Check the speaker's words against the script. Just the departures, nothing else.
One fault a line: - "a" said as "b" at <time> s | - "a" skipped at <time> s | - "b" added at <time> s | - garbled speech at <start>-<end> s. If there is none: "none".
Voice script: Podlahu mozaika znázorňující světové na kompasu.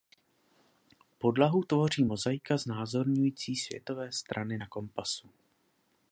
- "tvoří" added at 1.6 s
- "strany" added at 4.1 s